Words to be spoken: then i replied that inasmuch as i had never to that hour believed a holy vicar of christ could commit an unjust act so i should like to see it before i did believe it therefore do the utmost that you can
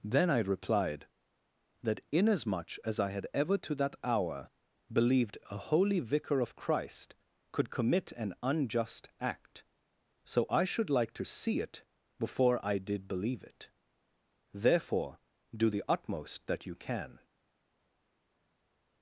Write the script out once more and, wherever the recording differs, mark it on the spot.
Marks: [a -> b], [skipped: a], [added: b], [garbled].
then i replied that inasmuch as i had [never -> ever] to that hour believed a holy vicar of christ could commit an unjust act so i should like to see it before i did believe it therefore do the utmost that you can